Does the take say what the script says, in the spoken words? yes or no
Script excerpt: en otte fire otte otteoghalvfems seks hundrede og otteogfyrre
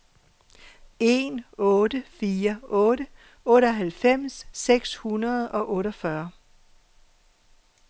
yes